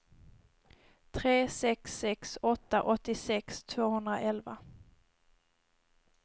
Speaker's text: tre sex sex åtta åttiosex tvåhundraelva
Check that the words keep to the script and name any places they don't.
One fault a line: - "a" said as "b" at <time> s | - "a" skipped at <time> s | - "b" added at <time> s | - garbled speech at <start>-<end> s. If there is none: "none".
none